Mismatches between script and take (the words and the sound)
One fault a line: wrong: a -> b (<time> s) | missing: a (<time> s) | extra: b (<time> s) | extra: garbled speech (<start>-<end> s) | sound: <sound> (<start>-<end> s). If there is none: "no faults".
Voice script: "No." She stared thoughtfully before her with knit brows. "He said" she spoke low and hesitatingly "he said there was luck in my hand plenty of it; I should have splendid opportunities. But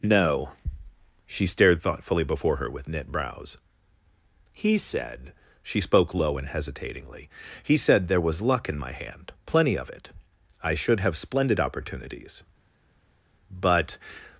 no faults